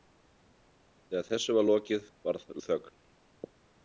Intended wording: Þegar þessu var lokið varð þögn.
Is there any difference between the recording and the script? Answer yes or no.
no